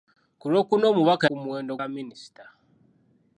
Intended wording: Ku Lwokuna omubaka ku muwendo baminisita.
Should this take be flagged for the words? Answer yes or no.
no